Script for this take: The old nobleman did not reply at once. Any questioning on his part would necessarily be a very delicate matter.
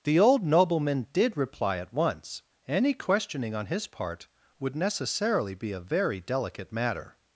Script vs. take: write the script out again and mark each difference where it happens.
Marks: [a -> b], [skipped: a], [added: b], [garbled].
The old nobleman did [skipped: not] reply at once. Any questioning on his part would necessarily be a very delicate matter.